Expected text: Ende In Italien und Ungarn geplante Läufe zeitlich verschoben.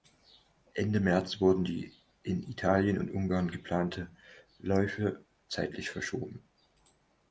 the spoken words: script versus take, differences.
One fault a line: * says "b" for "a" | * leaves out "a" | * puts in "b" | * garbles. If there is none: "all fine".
* puts in "März wurden die"